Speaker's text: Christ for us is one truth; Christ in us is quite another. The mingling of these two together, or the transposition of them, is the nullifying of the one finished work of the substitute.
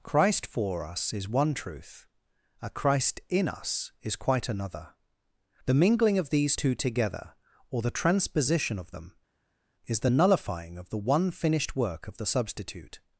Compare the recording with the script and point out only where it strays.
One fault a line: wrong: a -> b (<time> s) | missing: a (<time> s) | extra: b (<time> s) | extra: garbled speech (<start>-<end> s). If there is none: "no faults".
extra: a (2.6 s)